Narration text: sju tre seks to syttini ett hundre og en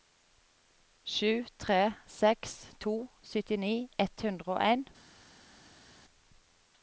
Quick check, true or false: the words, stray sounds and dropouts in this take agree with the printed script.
true